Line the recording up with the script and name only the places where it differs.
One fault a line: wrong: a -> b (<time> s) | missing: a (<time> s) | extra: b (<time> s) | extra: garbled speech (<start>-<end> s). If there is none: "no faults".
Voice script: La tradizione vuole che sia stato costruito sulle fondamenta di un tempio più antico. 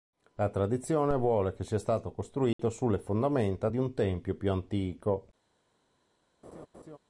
no faults